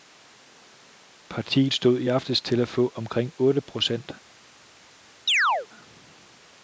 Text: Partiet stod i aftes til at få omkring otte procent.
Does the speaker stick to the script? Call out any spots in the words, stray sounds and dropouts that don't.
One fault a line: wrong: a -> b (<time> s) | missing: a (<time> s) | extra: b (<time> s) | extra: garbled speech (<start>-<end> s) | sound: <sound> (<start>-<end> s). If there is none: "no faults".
sound: chirp (5.3-5.7 s)